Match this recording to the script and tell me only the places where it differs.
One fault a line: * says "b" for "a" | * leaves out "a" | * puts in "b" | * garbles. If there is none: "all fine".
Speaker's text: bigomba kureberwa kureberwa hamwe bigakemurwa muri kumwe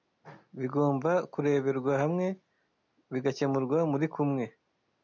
* leaves out "kureberwa"